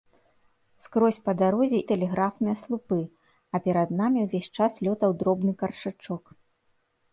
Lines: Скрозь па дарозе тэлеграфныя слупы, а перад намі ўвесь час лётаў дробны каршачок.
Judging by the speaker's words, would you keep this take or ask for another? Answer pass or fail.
pass